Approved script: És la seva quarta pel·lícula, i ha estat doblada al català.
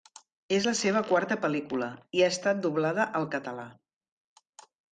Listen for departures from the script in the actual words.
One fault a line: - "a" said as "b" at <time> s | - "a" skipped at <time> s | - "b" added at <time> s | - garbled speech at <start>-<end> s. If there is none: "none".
none